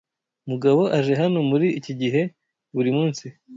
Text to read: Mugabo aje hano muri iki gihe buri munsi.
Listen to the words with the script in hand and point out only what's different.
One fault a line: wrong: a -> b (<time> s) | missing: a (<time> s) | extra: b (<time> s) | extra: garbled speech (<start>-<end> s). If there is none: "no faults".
no faults